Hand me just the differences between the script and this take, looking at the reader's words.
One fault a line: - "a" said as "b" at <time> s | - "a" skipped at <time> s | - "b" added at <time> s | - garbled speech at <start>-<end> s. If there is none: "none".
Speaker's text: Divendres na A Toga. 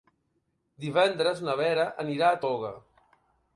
- "Vera anirà" added at 1.6 s